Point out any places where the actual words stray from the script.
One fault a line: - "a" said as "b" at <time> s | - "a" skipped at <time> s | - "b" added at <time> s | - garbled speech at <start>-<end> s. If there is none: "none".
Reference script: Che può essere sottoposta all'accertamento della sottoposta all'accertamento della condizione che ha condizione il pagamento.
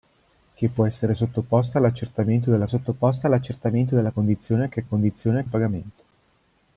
none